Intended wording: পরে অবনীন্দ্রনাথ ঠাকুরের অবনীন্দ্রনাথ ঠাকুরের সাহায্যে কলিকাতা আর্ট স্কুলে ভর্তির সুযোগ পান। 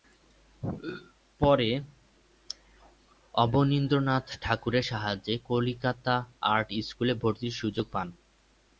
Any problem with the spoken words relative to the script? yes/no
yes